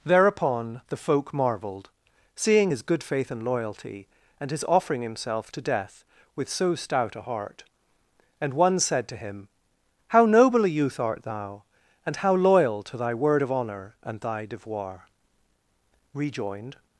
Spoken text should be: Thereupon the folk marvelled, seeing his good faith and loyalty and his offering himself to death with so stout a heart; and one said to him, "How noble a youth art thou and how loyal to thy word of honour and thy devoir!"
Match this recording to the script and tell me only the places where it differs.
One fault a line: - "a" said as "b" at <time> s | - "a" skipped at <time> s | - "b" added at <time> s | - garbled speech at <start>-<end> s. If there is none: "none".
- "Rejoined" added at 16.1 s